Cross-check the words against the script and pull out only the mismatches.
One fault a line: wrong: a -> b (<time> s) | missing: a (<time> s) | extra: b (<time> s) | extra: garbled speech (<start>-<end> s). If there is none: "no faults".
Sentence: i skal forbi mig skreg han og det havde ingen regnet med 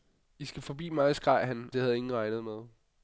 missing: og (1.7 s)